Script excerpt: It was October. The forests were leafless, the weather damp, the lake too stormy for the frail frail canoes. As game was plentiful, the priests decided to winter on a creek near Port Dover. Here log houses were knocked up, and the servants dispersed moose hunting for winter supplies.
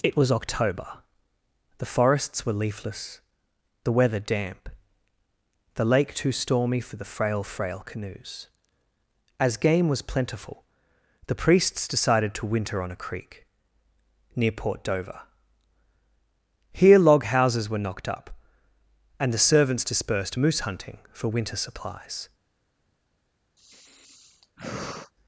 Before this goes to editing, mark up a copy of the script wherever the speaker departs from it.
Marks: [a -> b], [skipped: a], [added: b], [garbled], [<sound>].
It was October. The forests were leafless, the weather damp, the lake too stormy for the frail frail canoes. As game was plentiful, the priests decided to winter on a creek near Port Dover. Here log houses were knocked up, and the servants dispersed moose hunting for winter supplies. [sigh]